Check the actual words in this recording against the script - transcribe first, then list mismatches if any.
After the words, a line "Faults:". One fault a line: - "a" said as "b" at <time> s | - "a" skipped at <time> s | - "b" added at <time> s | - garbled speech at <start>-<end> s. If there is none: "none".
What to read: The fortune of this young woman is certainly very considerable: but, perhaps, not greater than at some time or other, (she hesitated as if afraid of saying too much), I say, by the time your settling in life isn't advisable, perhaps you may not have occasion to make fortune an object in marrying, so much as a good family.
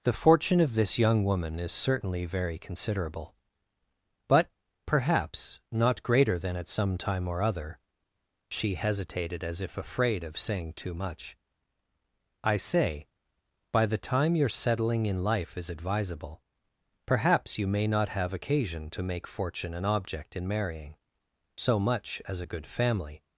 The fortune of this young woman is certainly very considerable: but, perhaps, not greater than at some time or other, (she hesitated as if afraid of saying too much), I say, by the time your settling in life is advisable, perhaps you may not have occasion to make fortune an object in marrying, so much as a good family.
Faults:
- "isn't" said as "is" at 15.6 s